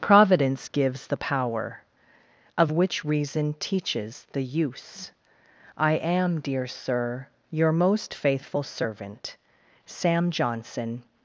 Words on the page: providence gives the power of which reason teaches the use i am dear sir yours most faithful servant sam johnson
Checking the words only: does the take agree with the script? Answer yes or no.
no